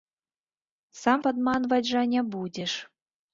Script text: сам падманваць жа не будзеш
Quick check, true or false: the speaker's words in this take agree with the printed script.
true